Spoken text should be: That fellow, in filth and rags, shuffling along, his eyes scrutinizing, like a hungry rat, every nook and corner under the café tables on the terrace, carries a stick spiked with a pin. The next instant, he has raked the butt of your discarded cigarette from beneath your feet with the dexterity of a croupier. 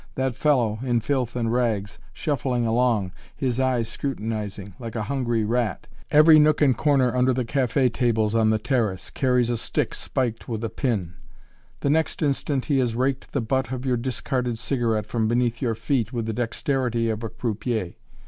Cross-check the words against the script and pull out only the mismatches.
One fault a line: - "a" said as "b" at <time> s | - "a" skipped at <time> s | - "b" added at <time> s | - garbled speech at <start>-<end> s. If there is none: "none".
none